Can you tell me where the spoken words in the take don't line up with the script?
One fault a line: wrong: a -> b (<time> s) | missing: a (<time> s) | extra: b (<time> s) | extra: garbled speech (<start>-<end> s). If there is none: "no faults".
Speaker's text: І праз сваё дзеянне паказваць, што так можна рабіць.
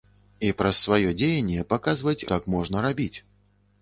missing: што (2.2 s)